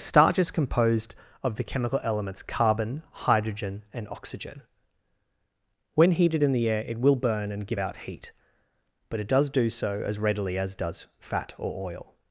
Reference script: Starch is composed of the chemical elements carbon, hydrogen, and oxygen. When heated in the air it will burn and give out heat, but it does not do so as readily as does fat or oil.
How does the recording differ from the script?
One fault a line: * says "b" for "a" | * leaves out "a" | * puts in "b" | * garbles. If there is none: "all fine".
* leaves out "not"